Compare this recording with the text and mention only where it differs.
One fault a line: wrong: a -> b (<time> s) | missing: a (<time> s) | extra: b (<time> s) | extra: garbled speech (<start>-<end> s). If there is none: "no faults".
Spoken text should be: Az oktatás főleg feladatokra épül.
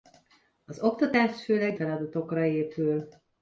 no faults